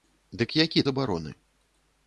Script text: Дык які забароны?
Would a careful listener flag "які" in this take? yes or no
no